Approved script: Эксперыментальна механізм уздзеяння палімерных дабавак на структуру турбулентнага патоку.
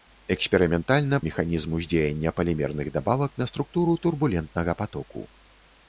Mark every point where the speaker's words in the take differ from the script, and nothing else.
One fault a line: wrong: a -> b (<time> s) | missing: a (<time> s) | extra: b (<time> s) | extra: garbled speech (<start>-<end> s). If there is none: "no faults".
no faults